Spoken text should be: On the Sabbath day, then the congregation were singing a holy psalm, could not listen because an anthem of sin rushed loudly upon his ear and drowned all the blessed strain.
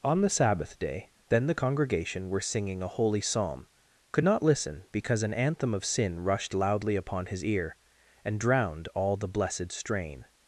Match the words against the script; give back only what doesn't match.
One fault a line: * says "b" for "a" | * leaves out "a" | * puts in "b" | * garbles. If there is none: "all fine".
all fine